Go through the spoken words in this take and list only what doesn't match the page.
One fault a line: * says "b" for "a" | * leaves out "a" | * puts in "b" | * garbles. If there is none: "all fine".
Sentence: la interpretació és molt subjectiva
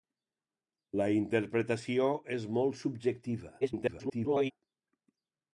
* garbles